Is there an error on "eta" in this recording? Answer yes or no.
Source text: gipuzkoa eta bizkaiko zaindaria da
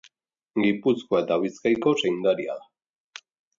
no